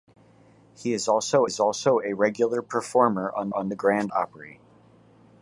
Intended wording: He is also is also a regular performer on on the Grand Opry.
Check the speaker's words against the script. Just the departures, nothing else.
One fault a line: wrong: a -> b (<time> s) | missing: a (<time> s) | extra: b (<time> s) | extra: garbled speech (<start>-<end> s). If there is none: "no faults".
no faults